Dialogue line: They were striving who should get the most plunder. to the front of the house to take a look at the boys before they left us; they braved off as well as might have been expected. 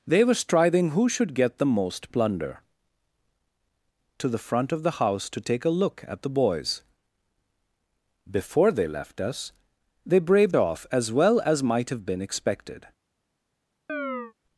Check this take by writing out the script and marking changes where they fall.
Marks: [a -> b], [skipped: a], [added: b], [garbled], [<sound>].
They were striving who should get the most plunder. to the front of the house to take a look at the boys before they left us; they braved off as well as might have been expected. [chirp]